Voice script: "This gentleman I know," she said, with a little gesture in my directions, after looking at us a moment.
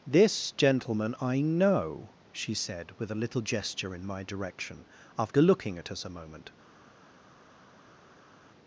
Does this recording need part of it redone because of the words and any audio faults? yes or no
yes